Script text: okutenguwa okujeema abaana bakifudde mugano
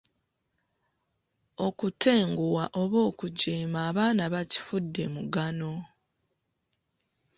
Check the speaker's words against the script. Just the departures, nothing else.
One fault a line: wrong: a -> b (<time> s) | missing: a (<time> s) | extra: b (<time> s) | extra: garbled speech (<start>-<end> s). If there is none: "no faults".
extra: oba (2.8 s)